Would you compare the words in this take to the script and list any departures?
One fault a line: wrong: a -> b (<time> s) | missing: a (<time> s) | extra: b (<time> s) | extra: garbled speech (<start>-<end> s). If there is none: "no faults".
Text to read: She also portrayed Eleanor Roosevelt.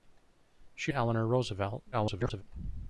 missing: also portrayed (0.9 s)
extra: garbled speech (1.9-2.4 s)